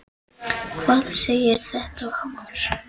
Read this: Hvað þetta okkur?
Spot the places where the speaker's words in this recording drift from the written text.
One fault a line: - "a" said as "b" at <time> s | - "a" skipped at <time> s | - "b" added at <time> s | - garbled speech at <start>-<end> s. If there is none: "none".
- "segir" added at 1.2 s